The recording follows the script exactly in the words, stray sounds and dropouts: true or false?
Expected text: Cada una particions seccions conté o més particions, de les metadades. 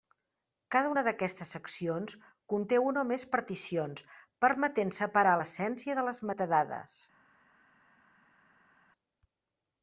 false